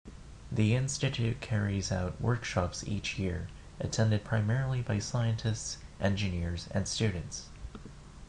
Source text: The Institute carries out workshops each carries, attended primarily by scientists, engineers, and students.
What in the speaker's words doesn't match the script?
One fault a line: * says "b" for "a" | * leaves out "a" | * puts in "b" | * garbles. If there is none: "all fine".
* says "year" for "carries"